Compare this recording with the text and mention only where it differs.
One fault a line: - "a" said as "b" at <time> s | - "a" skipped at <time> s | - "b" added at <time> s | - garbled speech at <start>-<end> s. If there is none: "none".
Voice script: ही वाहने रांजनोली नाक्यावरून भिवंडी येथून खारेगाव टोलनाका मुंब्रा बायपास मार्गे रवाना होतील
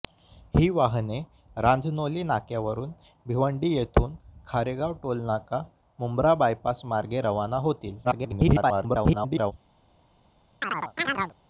- garbled speech at 8.0-9.5 s